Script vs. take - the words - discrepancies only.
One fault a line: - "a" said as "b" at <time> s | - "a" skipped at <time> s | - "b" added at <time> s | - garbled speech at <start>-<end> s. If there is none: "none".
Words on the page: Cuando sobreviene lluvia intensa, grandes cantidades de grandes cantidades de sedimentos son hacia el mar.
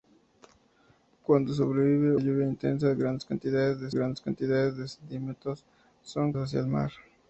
none